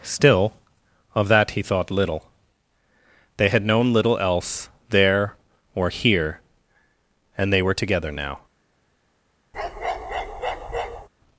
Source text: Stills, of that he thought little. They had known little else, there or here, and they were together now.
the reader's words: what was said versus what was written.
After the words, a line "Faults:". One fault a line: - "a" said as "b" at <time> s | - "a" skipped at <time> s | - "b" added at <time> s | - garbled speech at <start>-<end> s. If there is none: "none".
Still, of that he thought little. They had known little else, there or here, and they were together now.
Faults:
- "Stills" said as "Still" at 0.0 s